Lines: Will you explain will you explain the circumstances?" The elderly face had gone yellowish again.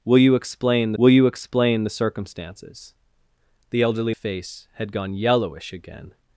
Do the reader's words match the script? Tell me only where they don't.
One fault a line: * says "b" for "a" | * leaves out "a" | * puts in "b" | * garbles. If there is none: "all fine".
all fine